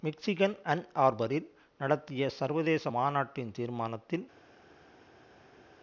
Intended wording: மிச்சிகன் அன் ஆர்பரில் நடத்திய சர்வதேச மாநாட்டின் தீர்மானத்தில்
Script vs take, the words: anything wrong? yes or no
no